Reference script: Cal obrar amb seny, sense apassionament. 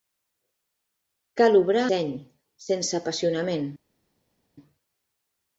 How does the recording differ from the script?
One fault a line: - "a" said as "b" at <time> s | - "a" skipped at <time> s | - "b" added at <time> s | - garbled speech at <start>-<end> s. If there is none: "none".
- "amb" skipped at 1.9 s